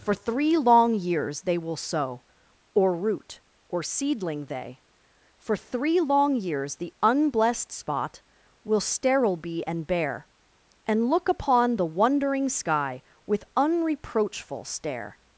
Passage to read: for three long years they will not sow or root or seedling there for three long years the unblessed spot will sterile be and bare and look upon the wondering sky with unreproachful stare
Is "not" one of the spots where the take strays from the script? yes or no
yes